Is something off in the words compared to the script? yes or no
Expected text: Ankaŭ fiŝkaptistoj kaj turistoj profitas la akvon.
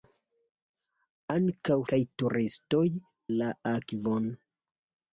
yes